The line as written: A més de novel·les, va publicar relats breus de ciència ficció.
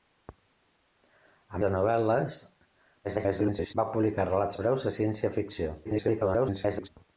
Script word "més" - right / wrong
wrong